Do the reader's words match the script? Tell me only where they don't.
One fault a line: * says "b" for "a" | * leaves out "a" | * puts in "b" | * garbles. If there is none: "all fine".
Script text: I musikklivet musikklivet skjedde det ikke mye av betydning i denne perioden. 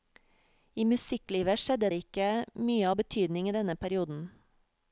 * leaves out "musikklivet"